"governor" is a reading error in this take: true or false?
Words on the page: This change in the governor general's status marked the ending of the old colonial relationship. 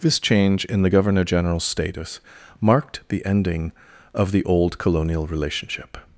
false